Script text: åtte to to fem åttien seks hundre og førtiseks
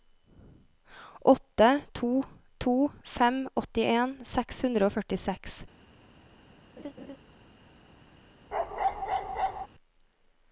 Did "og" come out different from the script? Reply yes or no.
no